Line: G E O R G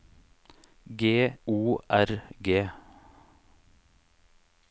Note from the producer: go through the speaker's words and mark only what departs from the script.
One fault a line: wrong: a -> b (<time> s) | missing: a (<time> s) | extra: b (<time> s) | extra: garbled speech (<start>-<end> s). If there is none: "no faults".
missing: E (1.4 s)